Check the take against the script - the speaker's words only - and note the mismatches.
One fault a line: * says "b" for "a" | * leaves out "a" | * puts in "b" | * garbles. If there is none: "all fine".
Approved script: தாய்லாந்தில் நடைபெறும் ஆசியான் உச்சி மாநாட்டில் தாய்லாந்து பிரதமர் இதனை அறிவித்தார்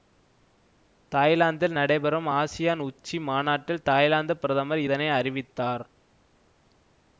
all fine